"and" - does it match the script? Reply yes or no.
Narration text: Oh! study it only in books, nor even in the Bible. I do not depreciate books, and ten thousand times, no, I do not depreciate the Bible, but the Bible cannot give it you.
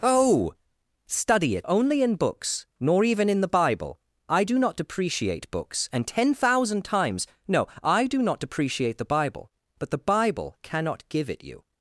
yes